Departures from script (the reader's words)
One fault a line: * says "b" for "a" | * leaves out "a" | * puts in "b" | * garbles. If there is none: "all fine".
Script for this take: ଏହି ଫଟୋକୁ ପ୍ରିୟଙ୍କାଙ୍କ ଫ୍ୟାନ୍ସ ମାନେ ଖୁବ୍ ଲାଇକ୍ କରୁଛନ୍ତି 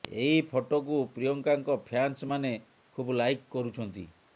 all fine